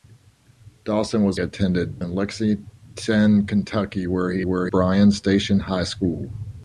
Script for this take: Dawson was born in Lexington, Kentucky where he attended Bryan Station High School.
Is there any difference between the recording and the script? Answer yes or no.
yes